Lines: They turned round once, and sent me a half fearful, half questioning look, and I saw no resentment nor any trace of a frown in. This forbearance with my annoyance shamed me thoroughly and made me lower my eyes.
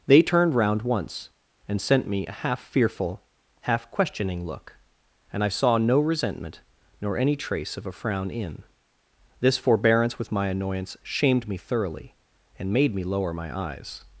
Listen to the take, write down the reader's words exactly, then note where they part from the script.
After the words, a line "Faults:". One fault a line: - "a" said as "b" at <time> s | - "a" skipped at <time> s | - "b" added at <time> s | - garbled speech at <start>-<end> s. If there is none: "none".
They turned round once, and sent me a half fearful, half questioning look, and I saw no resentment nor any trace of a frown in. This forbearance with my annoyance shamed me thoroughly and made me lower my eyes.
Faults:
none